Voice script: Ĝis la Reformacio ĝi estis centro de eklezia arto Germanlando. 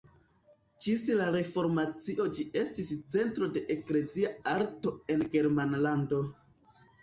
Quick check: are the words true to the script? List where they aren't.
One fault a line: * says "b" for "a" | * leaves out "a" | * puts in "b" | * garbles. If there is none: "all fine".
* puts in "en"